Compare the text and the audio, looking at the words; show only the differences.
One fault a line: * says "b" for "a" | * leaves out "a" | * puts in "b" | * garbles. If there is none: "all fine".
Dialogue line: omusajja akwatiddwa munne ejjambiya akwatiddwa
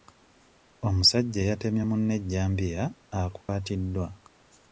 * says "eyatemye" for "akwatiddwa"